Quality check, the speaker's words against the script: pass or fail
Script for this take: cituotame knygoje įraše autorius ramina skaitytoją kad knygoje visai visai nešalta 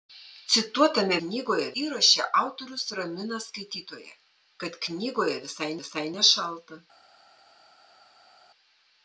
pass